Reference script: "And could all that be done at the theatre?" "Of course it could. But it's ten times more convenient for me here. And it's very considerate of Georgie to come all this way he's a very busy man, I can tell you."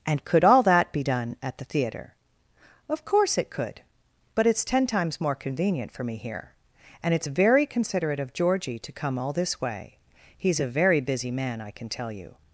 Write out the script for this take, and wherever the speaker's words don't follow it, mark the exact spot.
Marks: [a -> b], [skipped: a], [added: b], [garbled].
"And could all that be done at the theatre?" "Of course it could. But it's ten times more convenient for me here. And it's very considerate of Georgie to come all this way he's a very busy man, I can tell you."